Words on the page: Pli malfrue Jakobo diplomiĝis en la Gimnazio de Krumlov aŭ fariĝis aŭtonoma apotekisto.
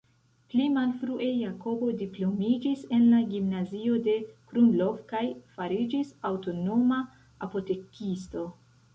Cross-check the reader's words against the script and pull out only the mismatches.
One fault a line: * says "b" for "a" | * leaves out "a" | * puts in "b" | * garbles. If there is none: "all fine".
* says "kaj" for "aŭ"